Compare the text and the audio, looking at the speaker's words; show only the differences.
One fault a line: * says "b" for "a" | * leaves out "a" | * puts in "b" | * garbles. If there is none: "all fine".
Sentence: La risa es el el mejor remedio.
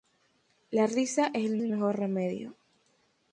all fine